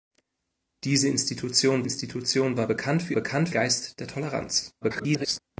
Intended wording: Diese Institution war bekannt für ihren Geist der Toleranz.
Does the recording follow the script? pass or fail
fail